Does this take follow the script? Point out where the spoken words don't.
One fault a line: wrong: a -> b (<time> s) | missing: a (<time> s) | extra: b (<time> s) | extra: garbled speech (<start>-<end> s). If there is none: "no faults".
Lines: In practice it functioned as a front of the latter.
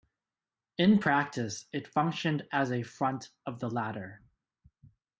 no faults